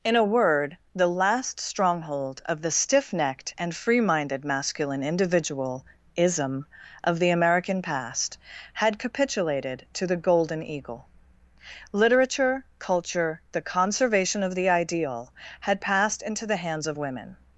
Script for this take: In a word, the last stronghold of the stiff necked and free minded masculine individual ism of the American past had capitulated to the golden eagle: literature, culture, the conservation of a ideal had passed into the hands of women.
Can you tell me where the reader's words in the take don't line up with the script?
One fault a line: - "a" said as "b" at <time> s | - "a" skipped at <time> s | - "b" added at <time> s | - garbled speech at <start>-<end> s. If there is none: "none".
- "a" said as "the" at 14.6 s